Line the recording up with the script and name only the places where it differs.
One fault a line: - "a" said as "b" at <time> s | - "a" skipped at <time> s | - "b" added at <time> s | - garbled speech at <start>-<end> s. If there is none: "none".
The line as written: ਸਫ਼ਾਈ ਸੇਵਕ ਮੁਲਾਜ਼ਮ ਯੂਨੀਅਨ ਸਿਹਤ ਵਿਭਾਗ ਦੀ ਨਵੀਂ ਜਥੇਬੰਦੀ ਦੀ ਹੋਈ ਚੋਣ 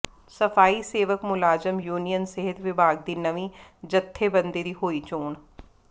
none